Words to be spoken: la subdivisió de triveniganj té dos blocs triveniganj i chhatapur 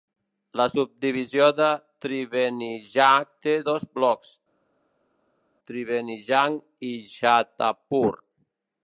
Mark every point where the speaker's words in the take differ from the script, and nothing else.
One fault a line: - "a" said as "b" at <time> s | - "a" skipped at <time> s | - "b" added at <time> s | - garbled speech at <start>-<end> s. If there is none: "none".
none